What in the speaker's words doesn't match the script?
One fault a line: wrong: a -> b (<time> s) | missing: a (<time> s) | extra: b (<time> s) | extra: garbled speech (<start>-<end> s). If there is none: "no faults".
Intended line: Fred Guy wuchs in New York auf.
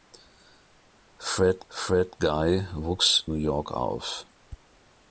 extra: fred (1.7 s)
missing: in (3.2 s)